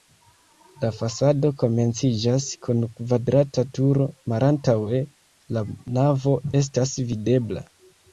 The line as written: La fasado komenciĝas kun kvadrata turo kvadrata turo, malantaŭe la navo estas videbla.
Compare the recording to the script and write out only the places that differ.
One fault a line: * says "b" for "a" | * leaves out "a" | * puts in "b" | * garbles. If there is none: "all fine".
* leaves out "kvadrata turo"